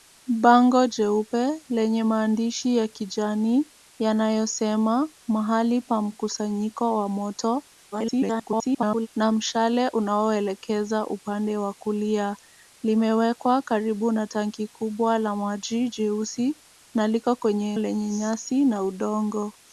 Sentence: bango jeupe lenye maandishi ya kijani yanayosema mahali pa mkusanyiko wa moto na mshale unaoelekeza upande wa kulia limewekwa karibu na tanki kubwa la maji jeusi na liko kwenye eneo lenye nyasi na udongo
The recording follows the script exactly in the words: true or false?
false